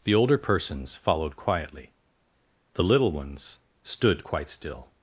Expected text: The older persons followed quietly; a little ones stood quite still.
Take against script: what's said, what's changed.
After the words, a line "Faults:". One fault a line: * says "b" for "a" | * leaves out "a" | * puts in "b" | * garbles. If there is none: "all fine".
The older persons followed quietly; the little ones stood quite still.
Faults:
* says "the" for "a"